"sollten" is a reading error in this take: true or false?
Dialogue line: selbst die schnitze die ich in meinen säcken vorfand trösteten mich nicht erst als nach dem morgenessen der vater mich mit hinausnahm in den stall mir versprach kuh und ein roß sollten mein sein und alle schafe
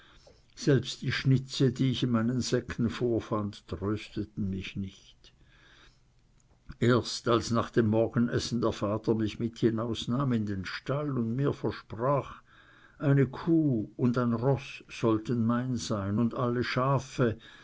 false